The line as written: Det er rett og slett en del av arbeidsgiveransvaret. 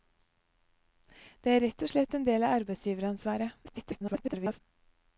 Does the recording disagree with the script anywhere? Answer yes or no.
yes